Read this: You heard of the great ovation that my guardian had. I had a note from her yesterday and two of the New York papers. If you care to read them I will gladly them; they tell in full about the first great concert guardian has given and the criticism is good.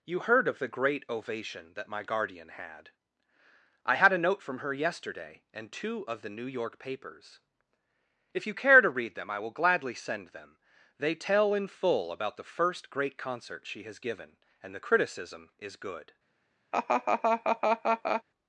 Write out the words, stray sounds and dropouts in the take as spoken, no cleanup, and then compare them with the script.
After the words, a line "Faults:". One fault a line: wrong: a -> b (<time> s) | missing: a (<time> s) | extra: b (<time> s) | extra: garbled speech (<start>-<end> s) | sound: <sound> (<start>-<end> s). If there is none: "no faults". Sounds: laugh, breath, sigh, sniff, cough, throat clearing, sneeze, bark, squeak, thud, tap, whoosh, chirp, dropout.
You heard of the great ovation that my guardian had. I had a note from her yesterday and two of the New York papers. If you care to read them I will gladly send them; they tell in full about the first great concert she has given and the criticism is good.
Faults:
extra: send (9.9 s)
wrong: guardian -> she (13.7 s)
sound: laugh (16.7-18.2 s)